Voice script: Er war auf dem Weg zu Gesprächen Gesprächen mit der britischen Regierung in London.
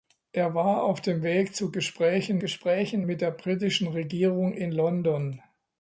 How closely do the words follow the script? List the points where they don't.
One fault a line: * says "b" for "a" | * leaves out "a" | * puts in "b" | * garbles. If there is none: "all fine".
all fine